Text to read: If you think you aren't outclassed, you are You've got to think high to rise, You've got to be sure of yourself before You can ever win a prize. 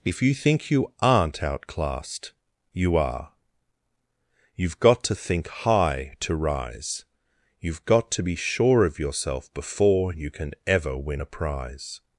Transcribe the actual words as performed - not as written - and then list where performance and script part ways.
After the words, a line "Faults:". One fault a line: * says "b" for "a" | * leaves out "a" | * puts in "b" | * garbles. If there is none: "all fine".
If you think you aren't outclassed, you are You've got to think high to rise, You've got to be sure of yourself before You can ever win a prize.
Faults:
all fine